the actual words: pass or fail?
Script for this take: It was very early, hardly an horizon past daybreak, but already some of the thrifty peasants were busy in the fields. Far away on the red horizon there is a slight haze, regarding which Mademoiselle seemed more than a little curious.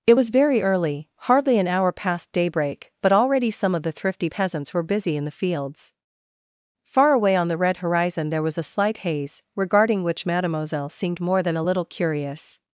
fail